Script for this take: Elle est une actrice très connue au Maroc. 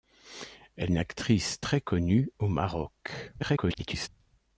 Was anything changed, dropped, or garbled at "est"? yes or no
yes